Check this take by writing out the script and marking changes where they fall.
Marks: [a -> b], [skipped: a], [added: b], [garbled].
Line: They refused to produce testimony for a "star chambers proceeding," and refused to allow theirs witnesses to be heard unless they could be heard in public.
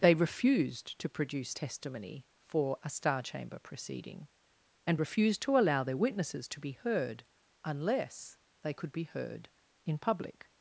They refused to produce testimony for a "star [chambers -> chamber] proceeding," and refused to allow [theirs -> their] witnesses to be heard unless they could be heard in public.